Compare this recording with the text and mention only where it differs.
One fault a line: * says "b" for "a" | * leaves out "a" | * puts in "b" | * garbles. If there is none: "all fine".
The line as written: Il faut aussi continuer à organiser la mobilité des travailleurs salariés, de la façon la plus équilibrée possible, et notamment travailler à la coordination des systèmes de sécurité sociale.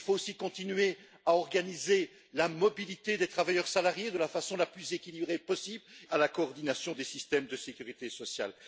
* leaves out "et notamment travailler"